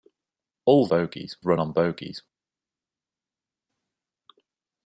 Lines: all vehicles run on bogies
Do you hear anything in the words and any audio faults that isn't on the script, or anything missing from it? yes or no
yes